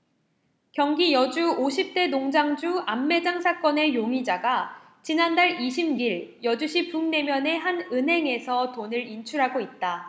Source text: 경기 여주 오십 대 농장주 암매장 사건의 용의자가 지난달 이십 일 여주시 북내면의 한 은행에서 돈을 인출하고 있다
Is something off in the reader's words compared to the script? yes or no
no